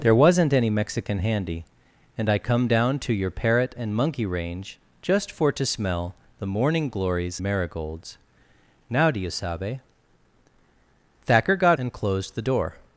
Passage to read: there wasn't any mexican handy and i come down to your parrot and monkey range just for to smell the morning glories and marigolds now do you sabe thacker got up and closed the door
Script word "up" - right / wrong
wrong